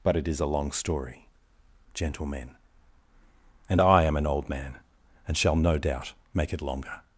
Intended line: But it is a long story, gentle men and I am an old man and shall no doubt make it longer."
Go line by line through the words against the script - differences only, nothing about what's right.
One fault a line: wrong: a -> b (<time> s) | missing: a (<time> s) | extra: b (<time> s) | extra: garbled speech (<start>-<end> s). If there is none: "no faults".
no faults